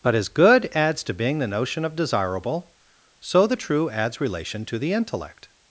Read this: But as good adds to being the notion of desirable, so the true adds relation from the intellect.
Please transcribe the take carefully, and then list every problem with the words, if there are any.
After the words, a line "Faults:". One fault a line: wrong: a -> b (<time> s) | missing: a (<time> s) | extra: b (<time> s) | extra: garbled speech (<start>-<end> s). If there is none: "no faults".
But as good adds to being the notion of desirable, so the true adds relation to the intellect.
Faults:
wrong: from -> to (4.7 s)